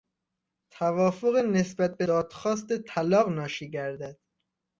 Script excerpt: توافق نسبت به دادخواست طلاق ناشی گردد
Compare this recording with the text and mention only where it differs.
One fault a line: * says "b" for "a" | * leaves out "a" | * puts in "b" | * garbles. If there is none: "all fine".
all fine